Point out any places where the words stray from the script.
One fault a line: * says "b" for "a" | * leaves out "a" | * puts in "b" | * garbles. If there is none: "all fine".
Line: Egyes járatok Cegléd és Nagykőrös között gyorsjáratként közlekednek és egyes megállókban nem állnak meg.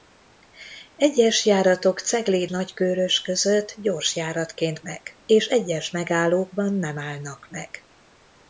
* leaves out "és"
* says "meg" for "közlekednek"